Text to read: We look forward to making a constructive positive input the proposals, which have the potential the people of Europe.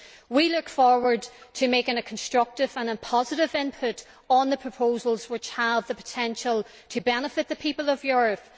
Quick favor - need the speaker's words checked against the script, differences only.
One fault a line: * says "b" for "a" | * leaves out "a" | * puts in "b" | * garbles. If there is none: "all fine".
* puts in "and"
* puts in "on"
* puts in "to benefit"